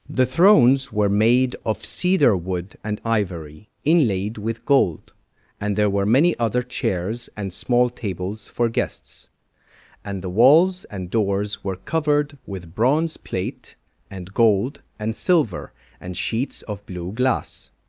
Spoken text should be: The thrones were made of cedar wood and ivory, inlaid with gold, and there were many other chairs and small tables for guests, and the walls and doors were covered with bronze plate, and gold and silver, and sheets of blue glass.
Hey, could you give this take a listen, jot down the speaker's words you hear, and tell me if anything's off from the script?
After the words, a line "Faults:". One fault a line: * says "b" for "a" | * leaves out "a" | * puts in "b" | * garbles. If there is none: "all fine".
The thrones were made of cedar wood and ivory, inlaid with gold, and there were many other chairs and small tables for guests, and the walls and doors were covered with bronze plate, and gold and silver, and sheets of blue glass.
Faults:
all fine